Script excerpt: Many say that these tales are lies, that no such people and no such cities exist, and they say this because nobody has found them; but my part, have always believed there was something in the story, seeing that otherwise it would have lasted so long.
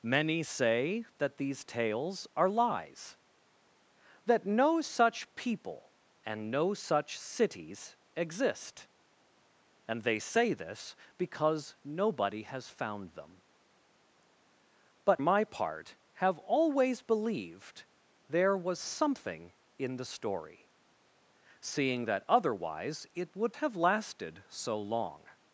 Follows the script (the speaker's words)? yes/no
yes